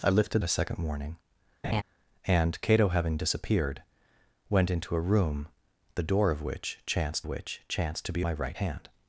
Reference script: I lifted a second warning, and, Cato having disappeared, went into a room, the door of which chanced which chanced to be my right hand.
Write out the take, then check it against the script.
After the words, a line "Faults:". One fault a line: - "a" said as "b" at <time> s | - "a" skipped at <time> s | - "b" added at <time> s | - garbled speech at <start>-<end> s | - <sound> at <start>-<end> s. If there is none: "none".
I lifted a second warning, and, Cato having disappeared, went into a room, the door of which chanced which chanced to be my right hand.
Faults:
- laugh at 1.6-1.8 s